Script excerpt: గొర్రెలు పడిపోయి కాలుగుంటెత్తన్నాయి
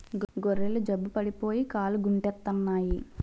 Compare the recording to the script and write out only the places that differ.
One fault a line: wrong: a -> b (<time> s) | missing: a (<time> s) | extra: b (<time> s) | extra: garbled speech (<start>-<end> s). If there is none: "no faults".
extra: జబ్బు (0.9 s)